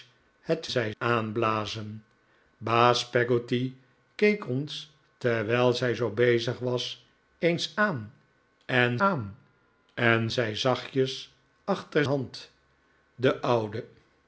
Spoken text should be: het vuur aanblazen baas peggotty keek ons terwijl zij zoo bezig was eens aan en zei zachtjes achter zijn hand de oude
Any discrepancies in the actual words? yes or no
yes